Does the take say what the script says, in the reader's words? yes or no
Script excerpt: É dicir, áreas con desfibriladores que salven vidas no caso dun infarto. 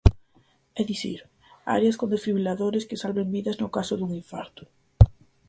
yes